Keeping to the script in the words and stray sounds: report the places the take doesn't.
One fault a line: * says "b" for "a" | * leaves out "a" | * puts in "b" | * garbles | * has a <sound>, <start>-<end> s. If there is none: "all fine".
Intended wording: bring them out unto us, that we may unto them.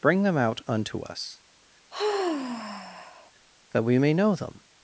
* has a sigh, 1.9-3.3 s
* says "know" for "unto"